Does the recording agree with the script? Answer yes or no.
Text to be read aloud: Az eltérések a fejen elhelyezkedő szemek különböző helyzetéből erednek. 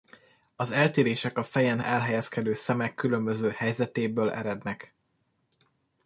yes